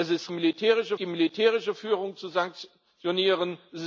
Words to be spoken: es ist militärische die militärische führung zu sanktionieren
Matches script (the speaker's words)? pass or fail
pass